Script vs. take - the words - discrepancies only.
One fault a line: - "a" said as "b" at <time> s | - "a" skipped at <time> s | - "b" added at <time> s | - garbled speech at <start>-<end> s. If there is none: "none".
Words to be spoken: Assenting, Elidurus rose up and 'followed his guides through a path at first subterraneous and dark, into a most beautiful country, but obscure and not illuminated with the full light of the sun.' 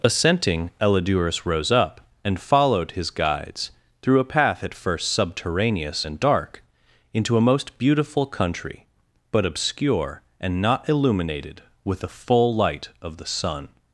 none